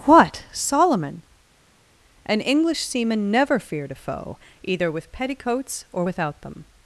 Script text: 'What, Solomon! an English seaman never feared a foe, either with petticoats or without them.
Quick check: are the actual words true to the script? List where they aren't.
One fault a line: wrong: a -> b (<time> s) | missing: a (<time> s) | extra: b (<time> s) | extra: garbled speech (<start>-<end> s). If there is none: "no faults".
no faults